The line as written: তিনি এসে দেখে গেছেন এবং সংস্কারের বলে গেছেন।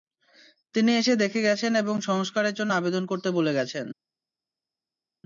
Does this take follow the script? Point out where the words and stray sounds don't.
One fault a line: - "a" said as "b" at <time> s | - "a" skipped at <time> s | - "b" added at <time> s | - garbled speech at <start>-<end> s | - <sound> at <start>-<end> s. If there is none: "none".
- "জন্য আবেদন করতে" added at 2.6 s